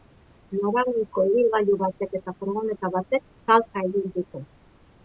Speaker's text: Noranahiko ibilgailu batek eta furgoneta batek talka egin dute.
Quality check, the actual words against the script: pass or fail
pass